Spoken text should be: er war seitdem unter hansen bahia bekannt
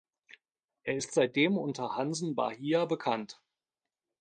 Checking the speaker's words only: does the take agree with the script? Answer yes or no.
no